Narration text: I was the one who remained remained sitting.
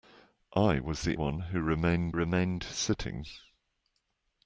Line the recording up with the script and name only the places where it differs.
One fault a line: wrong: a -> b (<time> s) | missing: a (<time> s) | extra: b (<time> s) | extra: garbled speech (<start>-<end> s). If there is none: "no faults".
no faults